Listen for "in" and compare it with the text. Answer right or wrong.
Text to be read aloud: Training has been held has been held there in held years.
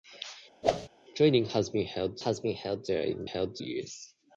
right